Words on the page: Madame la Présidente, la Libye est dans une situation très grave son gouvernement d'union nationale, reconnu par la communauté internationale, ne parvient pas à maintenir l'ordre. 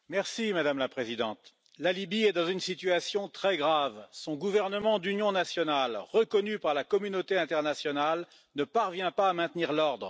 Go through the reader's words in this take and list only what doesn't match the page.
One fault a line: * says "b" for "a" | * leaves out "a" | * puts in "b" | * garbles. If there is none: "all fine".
all fine